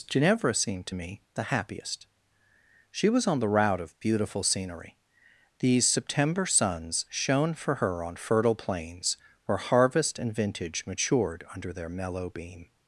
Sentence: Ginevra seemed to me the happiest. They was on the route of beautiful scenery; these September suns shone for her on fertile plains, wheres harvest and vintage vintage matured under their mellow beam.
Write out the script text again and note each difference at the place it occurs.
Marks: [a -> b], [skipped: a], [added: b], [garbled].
Ginevra seemed to me the happiest. [They -> She] was on the route of beautiful scenery; these September suns shone for her on fertile plains, [wheres -> where] harvest and vintage [skipped: vintage] matured under their mellow beam.